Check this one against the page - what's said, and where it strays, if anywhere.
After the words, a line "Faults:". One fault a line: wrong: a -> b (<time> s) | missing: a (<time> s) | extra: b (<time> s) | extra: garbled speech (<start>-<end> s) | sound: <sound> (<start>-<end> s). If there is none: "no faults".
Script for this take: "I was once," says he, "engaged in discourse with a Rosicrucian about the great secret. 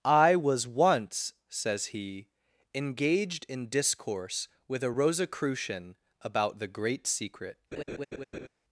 "I was once," says he, "engaged in discourse with a Rosicrucian about the great secret.
Faults:
sound: laugh (7.7-8.5 s)